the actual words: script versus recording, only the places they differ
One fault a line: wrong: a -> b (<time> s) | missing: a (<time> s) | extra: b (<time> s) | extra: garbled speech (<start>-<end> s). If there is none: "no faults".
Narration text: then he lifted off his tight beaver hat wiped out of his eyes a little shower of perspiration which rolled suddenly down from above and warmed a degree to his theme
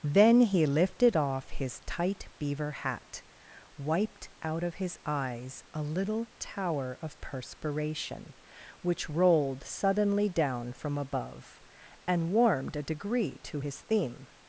wrong: shower -> tower (6.4 s)